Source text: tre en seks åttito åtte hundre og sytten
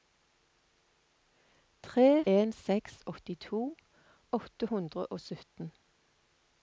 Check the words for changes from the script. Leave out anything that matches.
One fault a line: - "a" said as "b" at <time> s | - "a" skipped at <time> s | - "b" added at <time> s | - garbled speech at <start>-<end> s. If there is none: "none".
none